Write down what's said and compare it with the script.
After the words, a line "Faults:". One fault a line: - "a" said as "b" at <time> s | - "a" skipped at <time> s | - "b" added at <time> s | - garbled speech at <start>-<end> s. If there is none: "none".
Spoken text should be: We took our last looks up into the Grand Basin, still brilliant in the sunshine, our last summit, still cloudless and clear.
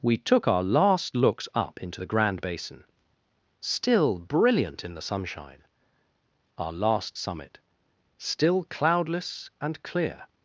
We took our last looks up into the Grand Basin, still brilliant in the sunshine, our last summit, still cloudless and clear.
Faults:
none